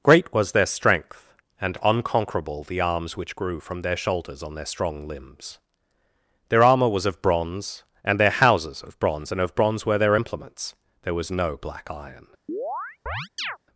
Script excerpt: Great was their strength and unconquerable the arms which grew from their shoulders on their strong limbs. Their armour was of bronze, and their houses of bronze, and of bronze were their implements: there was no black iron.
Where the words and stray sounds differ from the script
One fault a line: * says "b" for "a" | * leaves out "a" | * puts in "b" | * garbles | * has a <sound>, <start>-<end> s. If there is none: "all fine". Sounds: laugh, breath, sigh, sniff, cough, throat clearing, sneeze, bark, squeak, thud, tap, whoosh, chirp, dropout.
* has a chirp, 12.5-13.6 s